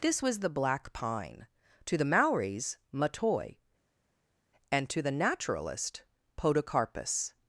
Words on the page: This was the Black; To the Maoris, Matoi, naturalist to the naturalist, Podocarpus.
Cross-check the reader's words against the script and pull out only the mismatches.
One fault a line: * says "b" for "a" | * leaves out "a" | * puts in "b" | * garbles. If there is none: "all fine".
* puts in "Pine"
* says "and" for "naturalist"